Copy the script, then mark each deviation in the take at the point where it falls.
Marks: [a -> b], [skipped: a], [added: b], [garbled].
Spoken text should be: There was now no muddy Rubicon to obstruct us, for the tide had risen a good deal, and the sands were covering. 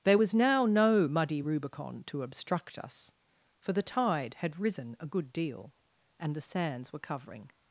There was now no muddy Rubicon to obstruct us, for the tide had risen a good deal, and the sands were covering.